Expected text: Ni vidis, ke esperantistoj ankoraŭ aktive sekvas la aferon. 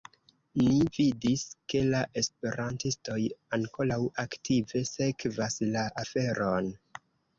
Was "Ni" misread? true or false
false